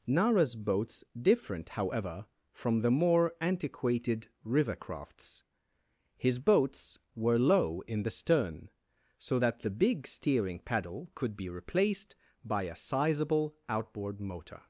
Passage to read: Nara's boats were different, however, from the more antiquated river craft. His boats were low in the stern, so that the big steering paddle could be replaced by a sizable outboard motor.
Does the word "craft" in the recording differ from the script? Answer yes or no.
yes